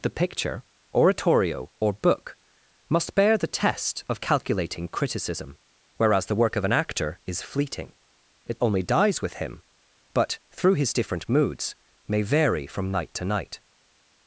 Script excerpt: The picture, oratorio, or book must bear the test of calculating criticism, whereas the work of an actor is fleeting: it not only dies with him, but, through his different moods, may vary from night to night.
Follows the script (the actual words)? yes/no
no